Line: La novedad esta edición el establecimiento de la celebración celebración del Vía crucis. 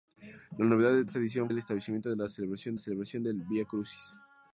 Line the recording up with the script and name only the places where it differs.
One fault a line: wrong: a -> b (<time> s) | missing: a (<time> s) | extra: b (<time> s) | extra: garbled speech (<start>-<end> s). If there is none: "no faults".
no faults